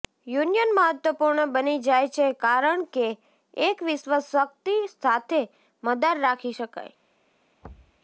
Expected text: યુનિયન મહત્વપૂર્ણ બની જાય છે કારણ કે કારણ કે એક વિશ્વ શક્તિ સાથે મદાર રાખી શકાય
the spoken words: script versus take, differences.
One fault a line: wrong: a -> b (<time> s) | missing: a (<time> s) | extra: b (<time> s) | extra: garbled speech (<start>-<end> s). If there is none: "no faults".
missing: કારણ કે (3.1 s)